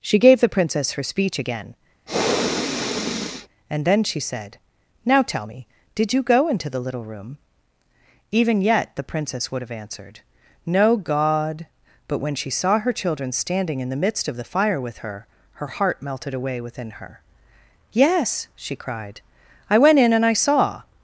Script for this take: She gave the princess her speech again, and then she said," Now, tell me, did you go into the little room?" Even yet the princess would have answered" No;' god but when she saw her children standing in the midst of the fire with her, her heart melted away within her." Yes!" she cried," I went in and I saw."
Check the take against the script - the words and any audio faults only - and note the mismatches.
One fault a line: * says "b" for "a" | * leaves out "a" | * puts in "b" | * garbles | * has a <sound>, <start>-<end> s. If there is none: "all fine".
* has a sniff, 2.1-3.5 s